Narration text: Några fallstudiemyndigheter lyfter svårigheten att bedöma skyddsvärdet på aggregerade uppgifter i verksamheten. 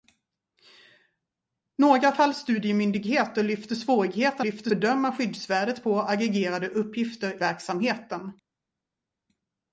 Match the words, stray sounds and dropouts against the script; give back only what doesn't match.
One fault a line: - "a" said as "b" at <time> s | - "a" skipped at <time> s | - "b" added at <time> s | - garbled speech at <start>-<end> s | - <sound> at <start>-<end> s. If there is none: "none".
- "att" said as "lyfter" at 4.4 s
- "i" skipped at 7.4 s